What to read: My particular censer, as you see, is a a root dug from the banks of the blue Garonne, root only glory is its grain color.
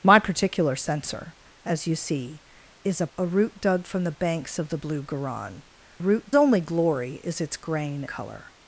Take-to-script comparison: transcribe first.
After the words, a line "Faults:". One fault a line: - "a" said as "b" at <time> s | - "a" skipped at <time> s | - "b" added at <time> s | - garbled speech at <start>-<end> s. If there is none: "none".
My particular censer, as you see, is a a root dug from the banks of the blue Garonne, root only glory is its grain color.
Faults:
none